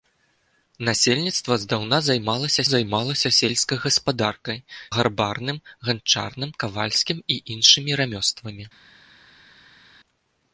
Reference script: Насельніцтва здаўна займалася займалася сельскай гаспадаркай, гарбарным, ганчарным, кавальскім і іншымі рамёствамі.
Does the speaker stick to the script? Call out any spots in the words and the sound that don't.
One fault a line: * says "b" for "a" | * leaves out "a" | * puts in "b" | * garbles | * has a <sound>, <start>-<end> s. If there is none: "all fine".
all fine